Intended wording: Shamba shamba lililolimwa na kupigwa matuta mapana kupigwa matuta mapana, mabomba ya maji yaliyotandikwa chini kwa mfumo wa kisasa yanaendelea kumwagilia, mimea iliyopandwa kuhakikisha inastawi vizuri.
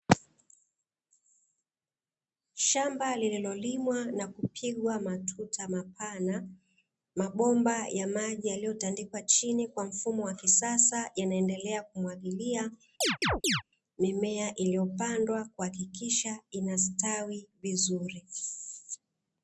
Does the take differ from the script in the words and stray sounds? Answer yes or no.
yes